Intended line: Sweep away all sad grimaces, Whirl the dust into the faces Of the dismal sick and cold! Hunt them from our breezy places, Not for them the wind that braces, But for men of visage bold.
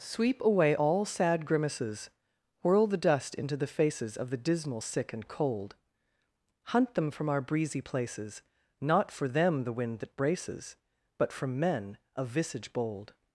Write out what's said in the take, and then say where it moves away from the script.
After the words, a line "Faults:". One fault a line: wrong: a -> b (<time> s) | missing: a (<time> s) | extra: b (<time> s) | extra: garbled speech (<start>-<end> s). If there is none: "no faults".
Sweep away all sad grimaces, Whirl the dust into the faces Of the dismal sick and cold! Hunt them from our breezy places, Not for them the wind that braces, But from men of visage bold.
Faults:
wrong: for -> from (11.3 s)